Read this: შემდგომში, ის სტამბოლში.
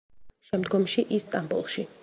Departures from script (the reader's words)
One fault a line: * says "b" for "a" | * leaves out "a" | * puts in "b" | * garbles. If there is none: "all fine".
all fine